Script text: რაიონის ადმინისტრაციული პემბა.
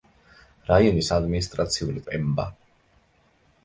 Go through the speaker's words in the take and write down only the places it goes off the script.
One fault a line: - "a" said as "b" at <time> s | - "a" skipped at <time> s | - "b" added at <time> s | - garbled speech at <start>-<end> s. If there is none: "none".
none